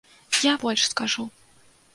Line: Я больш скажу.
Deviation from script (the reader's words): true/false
false